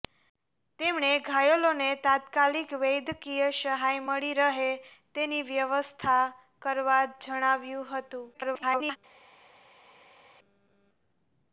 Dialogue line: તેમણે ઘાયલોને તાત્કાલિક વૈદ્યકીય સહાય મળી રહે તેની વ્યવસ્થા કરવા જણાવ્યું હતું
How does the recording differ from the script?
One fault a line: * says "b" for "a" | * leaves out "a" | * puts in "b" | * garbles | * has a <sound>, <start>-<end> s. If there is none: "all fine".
* garbles